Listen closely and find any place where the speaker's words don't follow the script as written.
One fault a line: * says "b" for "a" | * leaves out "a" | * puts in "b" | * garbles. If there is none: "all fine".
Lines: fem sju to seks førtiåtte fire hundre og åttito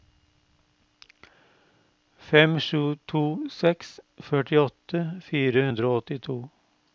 all fine